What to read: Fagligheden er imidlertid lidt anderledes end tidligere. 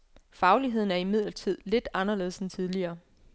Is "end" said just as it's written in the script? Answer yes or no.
yes